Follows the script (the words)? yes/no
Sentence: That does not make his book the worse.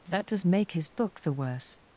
no